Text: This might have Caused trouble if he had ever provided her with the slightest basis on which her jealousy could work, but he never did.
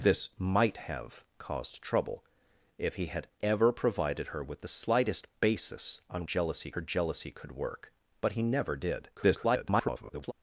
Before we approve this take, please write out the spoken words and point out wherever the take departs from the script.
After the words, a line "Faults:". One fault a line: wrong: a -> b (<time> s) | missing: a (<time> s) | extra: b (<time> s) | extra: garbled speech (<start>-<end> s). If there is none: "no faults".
This might have Caused trouble if he had ever provided her with the slightest basis on jealousy her jealousy could work, but he never did. [garbled]
Faults:
wrong: which -> jealousy (6.2 s)
extra: garbled speech (9.1-10.3 s)